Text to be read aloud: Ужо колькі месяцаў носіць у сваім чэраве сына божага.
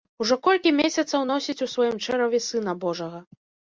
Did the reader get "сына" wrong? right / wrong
right